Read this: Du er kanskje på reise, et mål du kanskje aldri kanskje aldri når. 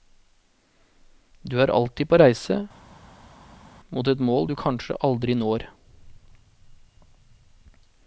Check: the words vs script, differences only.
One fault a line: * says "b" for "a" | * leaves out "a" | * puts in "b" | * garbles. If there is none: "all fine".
* says "alltid" for "kanskje"
* puts in "mot"
* leaves out "kanskje aldri"